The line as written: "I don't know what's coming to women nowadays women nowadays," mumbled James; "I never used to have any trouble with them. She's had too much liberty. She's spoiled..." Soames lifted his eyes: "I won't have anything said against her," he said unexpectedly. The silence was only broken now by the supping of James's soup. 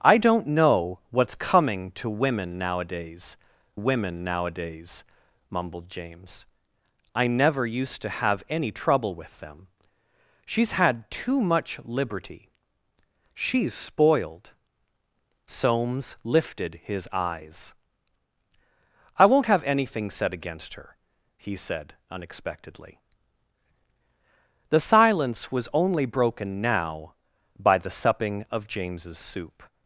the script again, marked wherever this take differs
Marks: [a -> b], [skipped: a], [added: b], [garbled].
"I don't know what's coming to women nowadays women nowadays," mumbled James; "I never used to have any trouble with them. She's had too much liberty. She's spoiled..." Soames lifted his eyes: "I won't have anything said against her," he said unexpectedly. The silence was only broken now by the supping of James's soup.